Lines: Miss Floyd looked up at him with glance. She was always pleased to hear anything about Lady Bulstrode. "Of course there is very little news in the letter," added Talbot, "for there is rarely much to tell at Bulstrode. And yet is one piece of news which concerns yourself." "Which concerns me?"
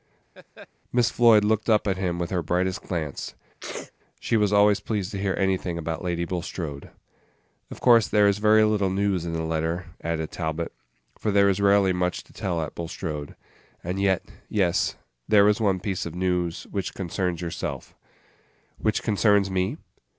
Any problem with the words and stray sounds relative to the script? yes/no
yes